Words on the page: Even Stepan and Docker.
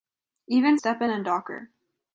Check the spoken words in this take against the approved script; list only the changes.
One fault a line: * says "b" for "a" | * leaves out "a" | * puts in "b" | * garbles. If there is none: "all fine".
all fine